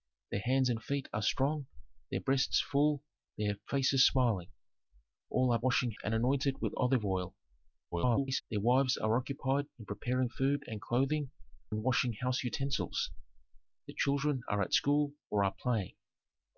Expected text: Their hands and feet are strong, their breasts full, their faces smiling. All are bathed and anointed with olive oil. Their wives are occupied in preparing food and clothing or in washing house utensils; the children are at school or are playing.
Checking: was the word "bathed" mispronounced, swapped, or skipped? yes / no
yes